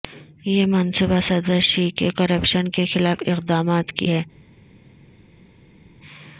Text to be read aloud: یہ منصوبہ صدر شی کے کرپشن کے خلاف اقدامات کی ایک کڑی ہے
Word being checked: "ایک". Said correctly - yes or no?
no